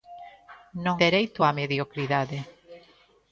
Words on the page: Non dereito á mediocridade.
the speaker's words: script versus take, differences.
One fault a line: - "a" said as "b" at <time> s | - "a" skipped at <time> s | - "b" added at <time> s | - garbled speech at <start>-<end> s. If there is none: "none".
none